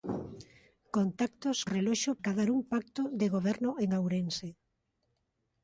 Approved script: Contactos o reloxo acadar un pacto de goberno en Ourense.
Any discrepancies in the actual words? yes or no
no